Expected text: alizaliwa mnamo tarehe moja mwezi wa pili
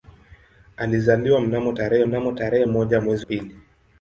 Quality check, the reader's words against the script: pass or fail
fail